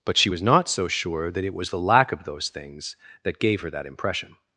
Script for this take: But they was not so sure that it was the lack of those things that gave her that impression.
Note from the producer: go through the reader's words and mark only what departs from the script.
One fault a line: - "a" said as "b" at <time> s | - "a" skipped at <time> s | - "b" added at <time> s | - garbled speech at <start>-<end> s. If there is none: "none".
- "they" said as "she" at 0.2 s